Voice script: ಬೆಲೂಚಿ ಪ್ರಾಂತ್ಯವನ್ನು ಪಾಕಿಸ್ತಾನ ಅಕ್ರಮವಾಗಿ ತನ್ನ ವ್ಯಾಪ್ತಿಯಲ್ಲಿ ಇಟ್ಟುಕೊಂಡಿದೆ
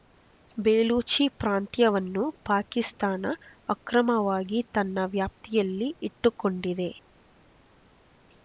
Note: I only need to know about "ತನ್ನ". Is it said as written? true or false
true